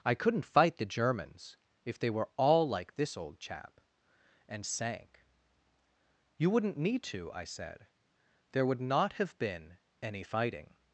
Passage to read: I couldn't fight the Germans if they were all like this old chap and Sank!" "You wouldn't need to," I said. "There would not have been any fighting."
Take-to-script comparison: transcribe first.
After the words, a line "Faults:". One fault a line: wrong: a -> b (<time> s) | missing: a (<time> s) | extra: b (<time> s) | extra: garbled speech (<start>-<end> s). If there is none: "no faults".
I couldn't fight the Germans if they were all like this old chap and Sank!" "You wouldn't need to," I said. "There would not have been any fighting."
Faults:
no faults